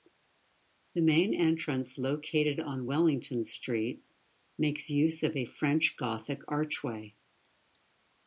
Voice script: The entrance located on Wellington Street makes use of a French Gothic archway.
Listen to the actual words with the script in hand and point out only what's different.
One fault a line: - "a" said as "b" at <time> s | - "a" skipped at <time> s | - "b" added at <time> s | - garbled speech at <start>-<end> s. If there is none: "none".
- "main" added at 1.0 s